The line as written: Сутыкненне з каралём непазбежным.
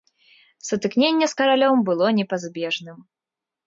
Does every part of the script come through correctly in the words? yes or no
no